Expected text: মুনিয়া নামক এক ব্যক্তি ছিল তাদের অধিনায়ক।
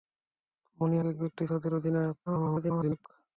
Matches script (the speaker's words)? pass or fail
fail